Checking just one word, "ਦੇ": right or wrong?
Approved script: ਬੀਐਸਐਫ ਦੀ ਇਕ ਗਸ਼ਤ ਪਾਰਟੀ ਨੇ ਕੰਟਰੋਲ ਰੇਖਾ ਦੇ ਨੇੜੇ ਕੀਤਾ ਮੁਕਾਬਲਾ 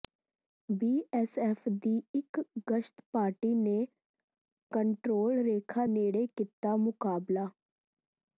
wrong